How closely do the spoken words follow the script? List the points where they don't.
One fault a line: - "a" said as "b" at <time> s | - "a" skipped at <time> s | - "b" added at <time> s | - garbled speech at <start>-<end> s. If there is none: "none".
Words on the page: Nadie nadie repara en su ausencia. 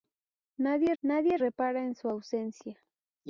none